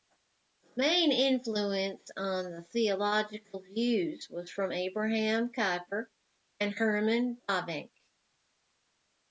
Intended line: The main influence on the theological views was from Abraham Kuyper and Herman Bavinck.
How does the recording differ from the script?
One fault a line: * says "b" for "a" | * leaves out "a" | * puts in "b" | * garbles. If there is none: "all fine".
all fine